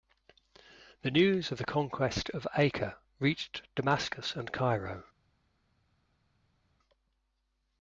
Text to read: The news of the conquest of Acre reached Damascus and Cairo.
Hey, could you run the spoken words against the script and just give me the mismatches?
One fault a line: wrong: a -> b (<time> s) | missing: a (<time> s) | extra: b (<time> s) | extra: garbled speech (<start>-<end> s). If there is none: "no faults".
no faults